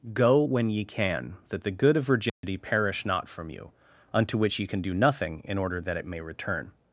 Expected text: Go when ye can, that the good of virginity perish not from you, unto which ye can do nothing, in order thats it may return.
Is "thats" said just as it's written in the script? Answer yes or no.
no